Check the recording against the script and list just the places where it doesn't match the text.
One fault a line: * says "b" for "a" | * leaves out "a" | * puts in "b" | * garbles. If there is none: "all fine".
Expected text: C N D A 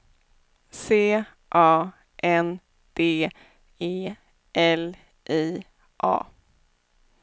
* puts in "A"
* puts in "E L I"